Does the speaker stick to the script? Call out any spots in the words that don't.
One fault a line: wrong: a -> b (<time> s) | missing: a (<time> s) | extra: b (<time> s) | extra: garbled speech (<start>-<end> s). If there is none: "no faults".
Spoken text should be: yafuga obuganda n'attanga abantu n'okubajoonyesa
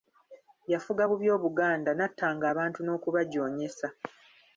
extra: bubi (1.1 s)